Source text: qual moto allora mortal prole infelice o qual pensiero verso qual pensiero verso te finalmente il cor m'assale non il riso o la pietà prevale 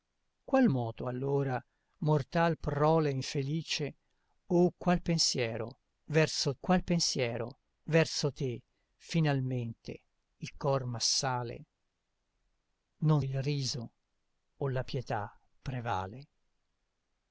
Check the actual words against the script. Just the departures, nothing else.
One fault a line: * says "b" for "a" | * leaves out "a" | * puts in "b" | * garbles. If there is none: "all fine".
all fine